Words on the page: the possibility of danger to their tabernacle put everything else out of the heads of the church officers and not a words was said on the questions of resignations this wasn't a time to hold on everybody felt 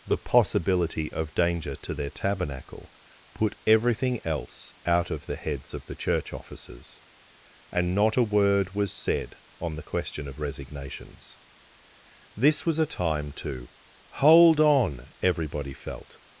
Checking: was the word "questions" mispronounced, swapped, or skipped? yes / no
yes